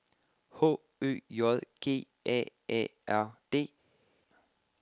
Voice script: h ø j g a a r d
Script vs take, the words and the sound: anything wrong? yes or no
no